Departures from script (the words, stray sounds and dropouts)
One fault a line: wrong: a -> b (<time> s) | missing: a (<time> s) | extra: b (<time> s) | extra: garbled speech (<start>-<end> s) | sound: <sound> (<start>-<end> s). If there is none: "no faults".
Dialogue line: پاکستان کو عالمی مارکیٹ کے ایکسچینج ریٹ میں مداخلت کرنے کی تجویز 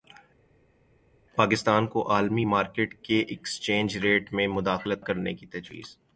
no faults